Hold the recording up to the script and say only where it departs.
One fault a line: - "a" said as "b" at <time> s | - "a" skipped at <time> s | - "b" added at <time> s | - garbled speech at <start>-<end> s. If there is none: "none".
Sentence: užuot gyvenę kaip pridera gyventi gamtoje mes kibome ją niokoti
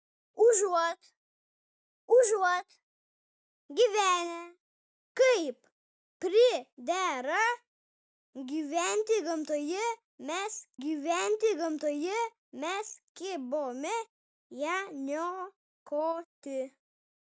- "užuot" added at 2.2 s
- "gyventi gamtoje mes" added at 10.8 s